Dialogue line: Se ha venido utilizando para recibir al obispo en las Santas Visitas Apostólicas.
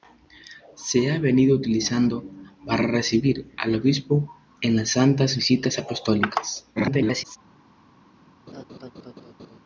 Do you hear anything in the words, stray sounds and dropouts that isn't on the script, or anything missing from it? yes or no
yes